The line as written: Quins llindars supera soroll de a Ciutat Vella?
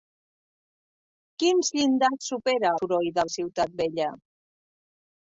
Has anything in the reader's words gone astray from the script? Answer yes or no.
no